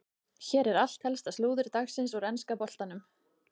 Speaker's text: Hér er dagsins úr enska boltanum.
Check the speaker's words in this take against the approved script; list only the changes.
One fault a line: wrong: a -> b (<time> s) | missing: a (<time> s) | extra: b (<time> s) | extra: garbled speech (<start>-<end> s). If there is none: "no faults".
extra: allt helsta slúður (0.8 s)